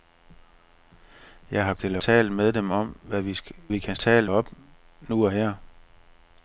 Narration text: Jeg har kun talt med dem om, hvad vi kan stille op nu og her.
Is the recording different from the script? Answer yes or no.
yes